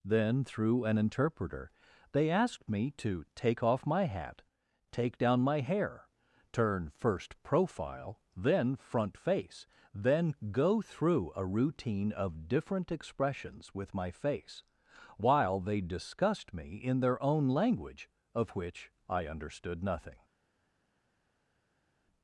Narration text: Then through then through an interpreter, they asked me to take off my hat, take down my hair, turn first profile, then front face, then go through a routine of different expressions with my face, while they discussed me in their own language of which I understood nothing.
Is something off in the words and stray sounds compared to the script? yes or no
yes